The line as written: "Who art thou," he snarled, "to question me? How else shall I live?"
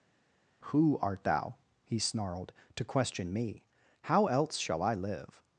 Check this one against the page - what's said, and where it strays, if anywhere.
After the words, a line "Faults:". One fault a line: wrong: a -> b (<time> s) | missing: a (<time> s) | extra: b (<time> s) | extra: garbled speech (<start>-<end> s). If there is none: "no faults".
"Who art thou," he snarled, "to question me? How else shall I live?"
Faults:
no faults